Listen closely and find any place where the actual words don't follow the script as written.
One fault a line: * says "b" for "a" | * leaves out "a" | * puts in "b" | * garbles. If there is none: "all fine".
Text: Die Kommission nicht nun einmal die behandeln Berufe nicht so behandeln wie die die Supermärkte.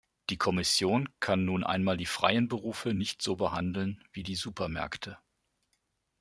* says "kann" for "nicht"
* says "freien" for "behandeln"
* leaves out "die"